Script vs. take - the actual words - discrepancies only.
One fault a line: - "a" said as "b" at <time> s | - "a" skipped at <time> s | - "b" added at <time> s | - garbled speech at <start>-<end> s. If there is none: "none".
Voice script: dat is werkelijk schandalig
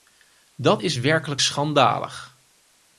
none